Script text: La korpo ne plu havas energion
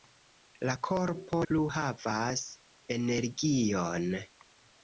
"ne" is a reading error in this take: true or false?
true